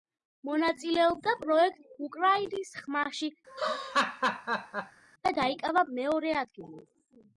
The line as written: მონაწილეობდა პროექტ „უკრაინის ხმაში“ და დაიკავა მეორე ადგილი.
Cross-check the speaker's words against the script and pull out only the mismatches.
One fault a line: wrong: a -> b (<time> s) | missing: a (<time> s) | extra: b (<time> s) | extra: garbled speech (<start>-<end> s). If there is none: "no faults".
no faults